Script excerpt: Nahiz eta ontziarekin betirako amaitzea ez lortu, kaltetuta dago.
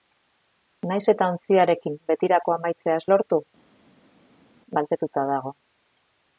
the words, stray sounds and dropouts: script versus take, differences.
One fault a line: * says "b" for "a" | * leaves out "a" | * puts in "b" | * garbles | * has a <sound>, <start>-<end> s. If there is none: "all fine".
all fine